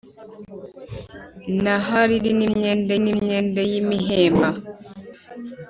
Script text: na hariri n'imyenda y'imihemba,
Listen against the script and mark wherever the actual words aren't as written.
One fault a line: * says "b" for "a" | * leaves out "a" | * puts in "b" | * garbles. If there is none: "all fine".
* puts in "n'imyenda"